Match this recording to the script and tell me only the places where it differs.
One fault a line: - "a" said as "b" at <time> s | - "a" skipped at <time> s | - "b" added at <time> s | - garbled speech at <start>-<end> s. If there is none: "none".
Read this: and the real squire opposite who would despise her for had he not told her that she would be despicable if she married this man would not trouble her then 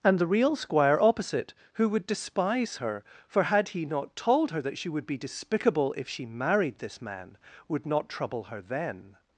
none